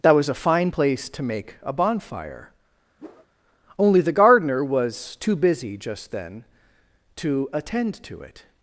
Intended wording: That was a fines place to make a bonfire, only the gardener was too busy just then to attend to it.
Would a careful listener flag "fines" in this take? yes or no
yes